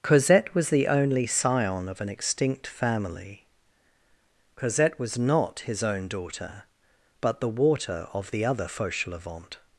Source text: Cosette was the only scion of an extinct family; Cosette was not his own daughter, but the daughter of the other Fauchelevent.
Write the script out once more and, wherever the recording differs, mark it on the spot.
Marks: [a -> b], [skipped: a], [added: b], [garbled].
Cosette was the only scion of an extinct family; Cosette was not his own daughter, but the [daughter -> water] of the other Fauchelevent.